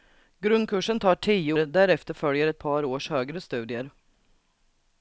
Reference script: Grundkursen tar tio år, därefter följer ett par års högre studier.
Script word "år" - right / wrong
wrong